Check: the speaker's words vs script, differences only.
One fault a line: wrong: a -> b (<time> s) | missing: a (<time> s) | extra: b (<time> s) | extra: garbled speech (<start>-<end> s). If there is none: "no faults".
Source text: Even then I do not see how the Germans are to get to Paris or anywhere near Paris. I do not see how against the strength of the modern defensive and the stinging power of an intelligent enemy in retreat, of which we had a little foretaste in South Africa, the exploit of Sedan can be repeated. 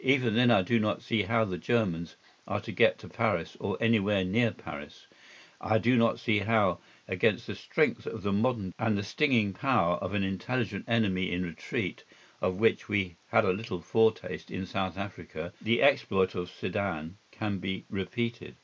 missing: defensive (8.7 s)